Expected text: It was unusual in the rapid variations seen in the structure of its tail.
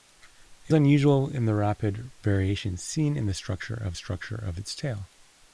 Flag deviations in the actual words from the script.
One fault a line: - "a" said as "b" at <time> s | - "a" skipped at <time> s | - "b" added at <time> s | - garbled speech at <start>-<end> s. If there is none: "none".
- "was" skipped at 0.7 s
- "structure of" added at 3.9 s